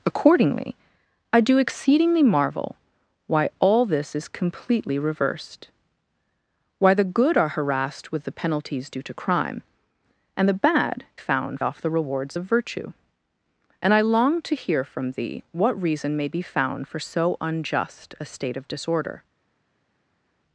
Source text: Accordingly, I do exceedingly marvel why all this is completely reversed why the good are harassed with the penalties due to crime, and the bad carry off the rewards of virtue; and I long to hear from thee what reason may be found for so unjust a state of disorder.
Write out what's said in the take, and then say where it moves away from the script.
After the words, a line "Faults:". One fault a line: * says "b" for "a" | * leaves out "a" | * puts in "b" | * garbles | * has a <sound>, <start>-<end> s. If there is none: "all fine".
Accordingly, I do exceedingly marvel why all this is completely reversed why the good are harassed with the penalties due to crime, and the bad found off the rewards of virtue; and I long to hear from thee what reason may be found for so unjust a state of disorder.
Faults:
* says "found" for "carry"